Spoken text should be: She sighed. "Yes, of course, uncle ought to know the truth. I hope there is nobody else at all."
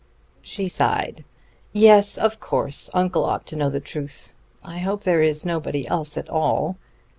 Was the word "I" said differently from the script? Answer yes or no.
no